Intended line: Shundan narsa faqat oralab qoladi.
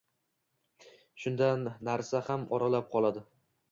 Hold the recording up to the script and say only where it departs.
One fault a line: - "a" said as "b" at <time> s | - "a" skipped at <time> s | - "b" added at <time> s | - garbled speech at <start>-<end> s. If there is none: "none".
- "faqat" said as "ham" at 2.3 s